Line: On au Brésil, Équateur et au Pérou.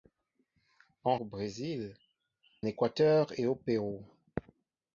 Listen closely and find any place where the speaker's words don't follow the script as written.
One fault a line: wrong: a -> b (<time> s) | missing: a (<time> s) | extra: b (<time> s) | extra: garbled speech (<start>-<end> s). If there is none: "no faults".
no faults